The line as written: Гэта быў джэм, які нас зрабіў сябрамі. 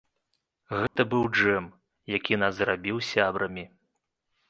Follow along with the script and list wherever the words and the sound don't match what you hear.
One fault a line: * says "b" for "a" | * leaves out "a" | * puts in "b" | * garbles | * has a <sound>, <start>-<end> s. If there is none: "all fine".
* has a dropout, 0.9-1.0 s